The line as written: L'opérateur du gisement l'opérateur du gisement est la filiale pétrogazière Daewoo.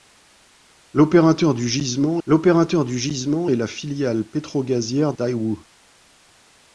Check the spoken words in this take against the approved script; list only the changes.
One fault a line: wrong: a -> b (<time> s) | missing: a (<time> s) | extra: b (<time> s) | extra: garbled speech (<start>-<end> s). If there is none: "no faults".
no faults